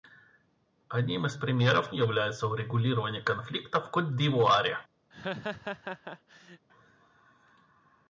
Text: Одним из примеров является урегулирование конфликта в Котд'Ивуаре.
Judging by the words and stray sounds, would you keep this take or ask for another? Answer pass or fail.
fail